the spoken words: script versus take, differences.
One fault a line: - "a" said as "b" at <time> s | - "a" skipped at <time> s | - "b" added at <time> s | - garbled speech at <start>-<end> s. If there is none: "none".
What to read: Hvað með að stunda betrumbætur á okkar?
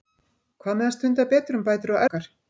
none